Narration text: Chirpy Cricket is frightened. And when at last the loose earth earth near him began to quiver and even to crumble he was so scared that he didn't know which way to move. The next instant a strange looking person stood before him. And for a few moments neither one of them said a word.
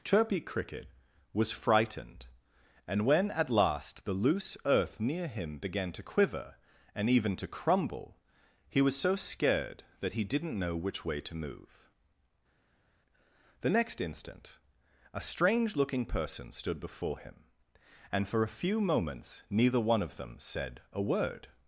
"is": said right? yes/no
no